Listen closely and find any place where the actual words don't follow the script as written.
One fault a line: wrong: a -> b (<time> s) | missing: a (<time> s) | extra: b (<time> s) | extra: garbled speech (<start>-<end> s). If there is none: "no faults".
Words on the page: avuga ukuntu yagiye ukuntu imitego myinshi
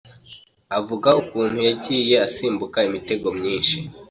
wrong: ukuntu -> asimbuka (2.3 s)